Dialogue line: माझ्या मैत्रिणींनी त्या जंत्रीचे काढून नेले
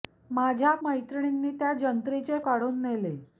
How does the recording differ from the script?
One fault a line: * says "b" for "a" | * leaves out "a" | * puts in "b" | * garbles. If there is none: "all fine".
all fine